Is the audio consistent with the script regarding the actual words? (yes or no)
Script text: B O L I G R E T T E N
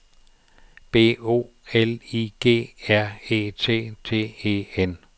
yes